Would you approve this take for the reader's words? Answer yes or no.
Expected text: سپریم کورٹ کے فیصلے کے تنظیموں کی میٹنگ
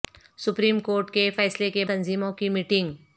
yes